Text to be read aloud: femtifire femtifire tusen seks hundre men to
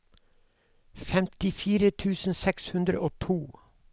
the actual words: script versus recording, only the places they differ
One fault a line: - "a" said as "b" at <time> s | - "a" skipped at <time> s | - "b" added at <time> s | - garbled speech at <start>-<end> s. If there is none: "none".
- "femtifire" skipped at 1.9 s
- "men" said as "og" at 3.0 s